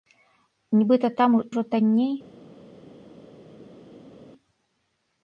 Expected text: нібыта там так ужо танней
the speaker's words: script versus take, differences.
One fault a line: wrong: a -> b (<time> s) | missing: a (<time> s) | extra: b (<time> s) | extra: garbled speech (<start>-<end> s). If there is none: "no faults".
missing: так (1.4 s)